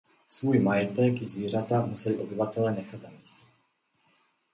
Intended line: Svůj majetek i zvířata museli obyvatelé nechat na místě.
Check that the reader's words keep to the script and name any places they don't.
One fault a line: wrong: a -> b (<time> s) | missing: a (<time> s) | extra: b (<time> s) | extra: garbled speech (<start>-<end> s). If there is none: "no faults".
no faults